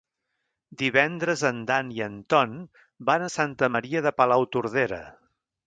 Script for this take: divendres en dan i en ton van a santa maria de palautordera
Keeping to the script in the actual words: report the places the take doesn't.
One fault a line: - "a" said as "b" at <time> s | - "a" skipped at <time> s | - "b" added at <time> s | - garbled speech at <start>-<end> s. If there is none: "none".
none